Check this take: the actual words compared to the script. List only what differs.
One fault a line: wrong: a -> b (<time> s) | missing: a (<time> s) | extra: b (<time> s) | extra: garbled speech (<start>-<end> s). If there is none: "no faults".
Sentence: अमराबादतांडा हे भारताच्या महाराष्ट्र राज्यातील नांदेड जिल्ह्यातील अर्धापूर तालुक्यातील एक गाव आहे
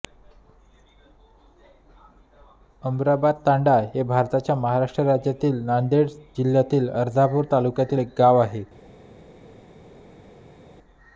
no faults